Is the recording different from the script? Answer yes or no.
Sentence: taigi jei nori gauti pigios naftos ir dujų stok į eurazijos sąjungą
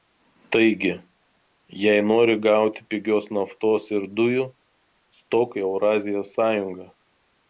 no